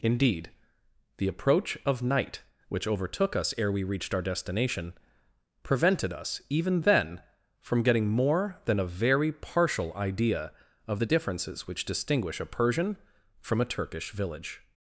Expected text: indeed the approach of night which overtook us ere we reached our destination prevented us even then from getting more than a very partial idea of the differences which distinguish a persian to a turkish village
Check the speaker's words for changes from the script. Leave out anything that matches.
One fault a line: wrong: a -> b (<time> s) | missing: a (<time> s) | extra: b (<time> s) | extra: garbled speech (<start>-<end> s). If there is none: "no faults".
wrong: to -> from (13.4 s)